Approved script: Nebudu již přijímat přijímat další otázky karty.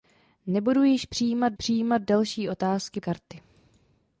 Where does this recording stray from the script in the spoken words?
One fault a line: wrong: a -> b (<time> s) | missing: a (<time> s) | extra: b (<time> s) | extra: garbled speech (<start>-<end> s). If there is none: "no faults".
no faults